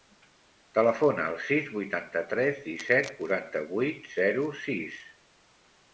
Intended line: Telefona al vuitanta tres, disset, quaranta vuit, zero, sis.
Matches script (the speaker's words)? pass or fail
fail